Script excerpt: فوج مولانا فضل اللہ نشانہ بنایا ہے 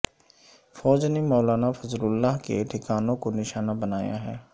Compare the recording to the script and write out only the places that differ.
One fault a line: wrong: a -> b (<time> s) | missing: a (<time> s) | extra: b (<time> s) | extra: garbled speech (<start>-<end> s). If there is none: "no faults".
extra: نے (1.1 s)
extra: کے ٹھکانوں کو (2.4 s)